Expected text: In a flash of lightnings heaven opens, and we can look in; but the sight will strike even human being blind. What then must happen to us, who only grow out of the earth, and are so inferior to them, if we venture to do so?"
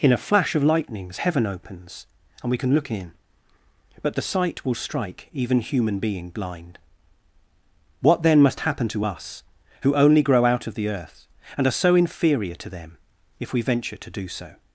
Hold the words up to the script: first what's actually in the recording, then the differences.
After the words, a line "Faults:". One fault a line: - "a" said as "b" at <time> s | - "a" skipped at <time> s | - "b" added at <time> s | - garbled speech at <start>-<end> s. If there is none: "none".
In a flash of lightnings heaven opens, and we can look in; but the sight will strike even human being blind. What then must happen to us, who only grow out of the earth, and are so inferior to them, if we venture to do so?"
Faults:
none